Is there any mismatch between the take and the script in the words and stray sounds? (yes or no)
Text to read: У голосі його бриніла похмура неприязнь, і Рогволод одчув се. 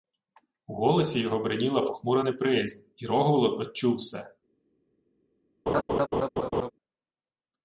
yes